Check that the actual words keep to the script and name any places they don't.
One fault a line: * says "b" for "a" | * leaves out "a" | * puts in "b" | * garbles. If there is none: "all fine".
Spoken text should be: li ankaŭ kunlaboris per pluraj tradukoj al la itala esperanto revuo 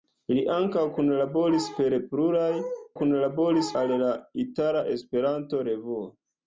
* says "kunlaboris" for "tradukoj"